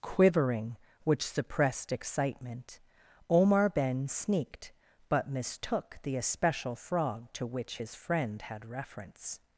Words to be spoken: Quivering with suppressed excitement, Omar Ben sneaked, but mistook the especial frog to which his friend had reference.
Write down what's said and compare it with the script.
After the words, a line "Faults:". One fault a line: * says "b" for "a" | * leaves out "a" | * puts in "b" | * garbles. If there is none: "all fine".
Quivering which suppressed excitement, Omar Ben sneaked, but mistook the especial frog to which his friend had reference.
Faults:
* says "which" for "with"